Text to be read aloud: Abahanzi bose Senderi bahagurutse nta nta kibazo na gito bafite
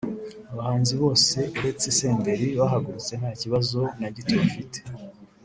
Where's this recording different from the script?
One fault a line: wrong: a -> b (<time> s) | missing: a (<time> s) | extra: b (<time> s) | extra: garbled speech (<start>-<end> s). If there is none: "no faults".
extra: uretse (1.6 s)
missing: nta (3.3 s)